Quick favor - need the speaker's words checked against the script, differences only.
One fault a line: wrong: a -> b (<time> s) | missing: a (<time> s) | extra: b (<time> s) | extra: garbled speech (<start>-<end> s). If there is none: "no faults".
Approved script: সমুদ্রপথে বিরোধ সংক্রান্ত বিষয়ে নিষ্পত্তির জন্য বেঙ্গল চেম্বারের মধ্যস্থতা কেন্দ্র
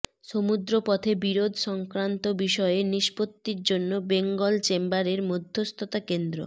no faults